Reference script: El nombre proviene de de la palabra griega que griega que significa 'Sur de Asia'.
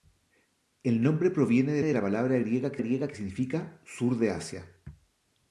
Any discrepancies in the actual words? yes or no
no